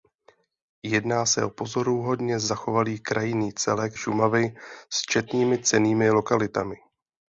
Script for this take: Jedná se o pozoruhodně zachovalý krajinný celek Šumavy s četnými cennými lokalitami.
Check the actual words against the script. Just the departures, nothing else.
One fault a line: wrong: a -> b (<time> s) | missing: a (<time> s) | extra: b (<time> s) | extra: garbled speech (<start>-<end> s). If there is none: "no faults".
no faults